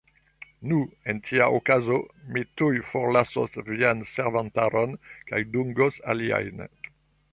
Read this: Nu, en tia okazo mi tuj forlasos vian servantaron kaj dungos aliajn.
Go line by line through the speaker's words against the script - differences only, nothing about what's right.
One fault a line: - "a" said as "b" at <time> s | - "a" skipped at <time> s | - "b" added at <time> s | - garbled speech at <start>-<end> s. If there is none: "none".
none